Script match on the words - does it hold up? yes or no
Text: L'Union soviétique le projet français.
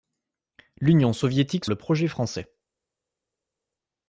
yes